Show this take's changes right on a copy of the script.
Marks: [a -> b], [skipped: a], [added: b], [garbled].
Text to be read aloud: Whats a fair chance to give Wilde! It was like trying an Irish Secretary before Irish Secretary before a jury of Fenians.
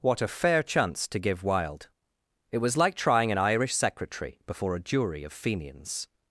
[Whats -> What] a fair chance to give Wilde! It was like trying an Irish Secretary before [skipped: Irish Secretary before] a jury of Fenians.